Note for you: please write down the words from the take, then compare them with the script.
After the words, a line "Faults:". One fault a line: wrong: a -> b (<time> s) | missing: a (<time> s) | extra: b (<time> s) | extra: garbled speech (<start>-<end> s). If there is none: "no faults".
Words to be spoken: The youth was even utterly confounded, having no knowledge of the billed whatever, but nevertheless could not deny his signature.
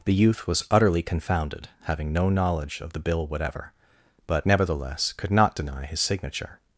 The youth was utterly confounded, having no knowledge of the bill whatever, but nevertheless could not deny his signature.
Faults:
missing: even (0.7 s)
wrong: billed -> bill (3.0 s)